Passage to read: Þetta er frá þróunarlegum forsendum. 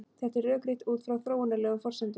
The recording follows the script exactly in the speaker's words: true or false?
false